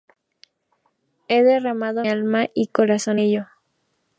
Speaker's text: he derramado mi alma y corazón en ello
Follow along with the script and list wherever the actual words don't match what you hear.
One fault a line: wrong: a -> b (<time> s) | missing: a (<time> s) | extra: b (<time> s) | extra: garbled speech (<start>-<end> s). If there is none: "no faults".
missing: mi (2.1 s)
missing: en (3.2 s)